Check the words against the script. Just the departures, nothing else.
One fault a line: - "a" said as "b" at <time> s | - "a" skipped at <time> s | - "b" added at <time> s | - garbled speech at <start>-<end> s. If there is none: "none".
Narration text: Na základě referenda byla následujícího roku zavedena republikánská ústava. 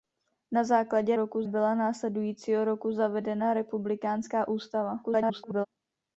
- "referenda" said as "roku" at 1.1 s
- garbled speech at 5.0-5.7 s